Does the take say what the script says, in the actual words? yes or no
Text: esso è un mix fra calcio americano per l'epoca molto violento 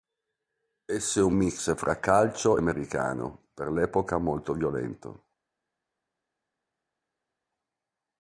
yes